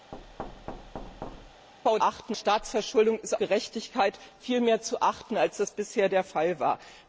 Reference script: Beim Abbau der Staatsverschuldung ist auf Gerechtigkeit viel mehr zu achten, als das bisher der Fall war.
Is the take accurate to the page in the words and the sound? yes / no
no